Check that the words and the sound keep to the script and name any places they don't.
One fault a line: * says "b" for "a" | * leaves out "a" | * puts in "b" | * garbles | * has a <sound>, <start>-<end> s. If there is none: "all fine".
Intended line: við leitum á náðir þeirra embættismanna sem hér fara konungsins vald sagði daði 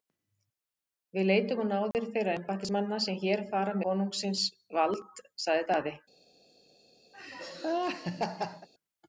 * has a dropout, 1.9-1.9 s
* has a laugh, 7.1-8.7 s